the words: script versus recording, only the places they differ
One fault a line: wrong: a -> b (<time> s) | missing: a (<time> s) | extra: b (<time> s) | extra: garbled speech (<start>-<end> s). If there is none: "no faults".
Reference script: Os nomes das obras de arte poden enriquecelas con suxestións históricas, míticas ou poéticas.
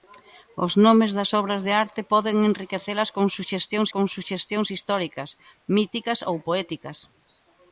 extra: con suxestións (3.9 s)